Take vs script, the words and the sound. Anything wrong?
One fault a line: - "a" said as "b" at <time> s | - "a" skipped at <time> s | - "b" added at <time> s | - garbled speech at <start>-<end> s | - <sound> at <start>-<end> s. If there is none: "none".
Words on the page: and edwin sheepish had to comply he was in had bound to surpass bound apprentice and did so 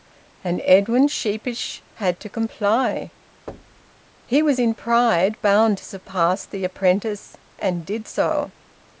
- thud at 3.5-4.0 s
- "had" said as "pride" at 4.7 s
- "bound" said as "the" at 6.4 s